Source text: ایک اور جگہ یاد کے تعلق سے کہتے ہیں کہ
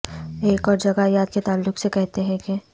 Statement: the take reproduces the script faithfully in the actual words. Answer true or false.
true